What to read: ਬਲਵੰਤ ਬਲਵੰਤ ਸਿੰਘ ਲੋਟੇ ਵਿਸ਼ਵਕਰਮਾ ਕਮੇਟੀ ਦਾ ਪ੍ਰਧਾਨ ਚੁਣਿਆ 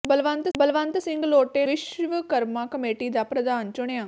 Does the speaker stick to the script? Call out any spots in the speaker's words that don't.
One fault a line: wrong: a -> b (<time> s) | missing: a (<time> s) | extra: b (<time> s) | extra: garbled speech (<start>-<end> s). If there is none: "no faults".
no faults